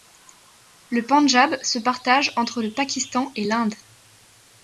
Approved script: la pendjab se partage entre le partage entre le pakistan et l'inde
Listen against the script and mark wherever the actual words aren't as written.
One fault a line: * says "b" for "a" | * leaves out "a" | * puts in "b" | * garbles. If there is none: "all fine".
* says "le" for "la"
* leaves out "partage entre le"